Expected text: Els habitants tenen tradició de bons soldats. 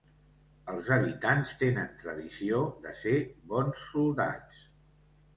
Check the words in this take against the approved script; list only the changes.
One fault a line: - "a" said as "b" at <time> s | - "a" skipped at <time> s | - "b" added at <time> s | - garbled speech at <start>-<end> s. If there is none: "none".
- "ser" added at 3.0 s